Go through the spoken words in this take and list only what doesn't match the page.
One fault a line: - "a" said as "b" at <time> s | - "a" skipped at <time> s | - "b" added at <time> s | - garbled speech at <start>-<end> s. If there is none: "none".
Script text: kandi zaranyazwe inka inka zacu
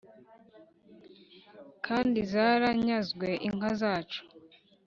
- "inka" skipped at 3.7 s